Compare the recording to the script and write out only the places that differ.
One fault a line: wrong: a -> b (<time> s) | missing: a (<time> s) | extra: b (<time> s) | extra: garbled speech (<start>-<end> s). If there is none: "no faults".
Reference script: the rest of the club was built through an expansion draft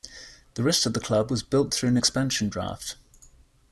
no faults